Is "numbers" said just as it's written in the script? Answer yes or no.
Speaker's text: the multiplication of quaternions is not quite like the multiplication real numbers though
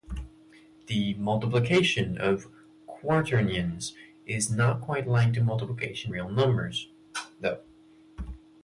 yes